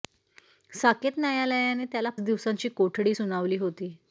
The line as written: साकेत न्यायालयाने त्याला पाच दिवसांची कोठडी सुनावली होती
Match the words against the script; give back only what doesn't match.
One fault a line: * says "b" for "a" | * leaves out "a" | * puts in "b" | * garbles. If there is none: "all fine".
* leaves out "पाच"